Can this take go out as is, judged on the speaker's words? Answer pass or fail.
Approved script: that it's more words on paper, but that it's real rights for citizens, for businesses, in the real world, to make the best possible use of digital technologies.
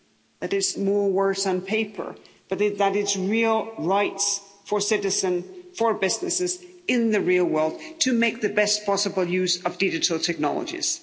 pass